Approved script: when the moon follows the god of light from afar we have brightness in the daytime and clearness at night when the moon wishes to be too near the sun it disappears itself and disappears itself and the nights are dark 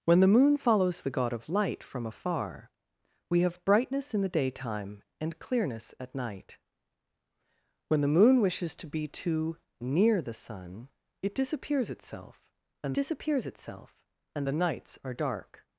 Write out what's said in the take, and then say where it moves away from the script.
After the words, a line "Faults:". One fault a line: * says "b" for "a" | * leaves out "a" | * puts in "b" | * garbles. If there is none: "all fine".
when the moon follows the god of light from afar we have brightness in the daytime and clearness at night when the moon wishes to be too near the sun it disappears itself and disappears itself and the nights are dark
Faults:
all fine